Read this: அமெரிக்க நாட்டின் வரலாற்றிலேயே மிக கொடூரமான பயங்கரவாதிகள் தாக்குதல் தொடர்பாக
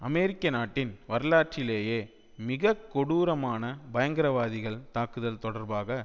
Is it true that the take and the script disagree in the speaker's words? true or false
false